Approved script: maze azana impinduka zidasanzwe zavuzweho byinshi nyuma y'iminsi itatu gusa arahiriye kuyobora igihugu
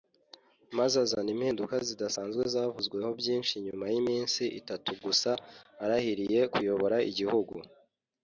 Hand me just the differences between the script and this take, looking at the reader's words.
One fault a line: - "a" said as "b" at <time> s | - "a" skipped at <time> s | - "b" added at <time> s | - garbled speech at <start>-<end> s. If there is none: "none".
none